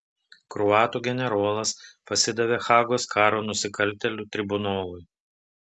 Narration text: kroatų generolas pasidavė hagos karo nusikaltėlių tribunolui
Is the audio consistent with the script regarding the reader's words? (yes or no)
yes